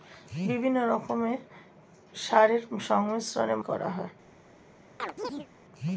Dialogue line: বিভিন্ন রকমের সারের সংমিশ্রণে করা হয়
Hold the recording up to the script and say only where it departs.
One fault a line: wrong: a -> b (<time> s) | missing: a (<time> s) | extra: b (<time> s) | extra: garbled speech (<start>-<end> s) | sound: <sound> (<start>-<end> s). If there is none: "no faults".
sound: chirp (5.0-5.5 s)